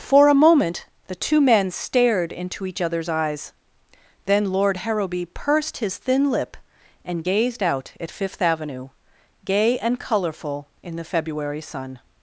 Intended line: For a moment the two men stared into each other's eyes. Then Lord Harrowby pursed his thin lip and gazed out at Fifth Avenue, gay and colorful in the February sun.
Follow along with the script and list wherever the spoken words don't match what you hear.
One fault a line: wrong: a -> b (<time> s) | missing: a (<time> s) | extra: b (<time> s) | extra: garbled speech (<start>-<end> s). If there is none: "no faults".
no faults